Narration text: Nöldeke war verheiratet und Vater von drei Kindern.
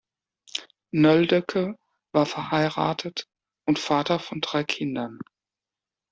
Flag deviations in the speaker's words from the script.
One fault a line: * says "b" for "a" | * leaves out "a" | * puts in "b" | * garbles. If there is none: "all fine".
all fine